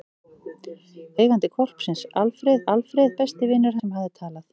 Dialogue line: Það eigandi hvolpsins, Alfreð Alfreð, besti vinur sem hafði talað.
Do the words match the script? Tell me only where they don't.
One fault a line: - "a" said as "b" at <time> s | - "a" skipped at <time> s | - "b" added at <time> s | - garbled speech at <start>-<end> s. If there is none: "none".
none